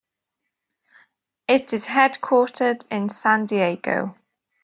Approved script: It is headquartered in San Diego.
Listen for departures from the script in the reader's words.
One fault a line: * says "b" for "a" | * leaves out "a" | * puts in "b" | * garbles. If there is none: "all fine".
all fine